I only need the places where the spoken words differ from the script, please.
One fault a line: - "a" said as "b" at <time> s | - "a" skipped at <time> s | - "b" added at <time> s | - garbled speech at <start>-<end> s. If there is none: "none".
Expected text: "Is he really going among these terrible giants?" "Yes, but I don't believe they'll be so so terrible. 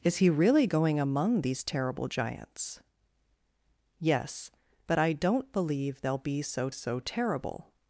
none